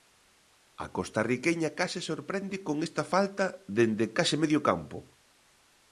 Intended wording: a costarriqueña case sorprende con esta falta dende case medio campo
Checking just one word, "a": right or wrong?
right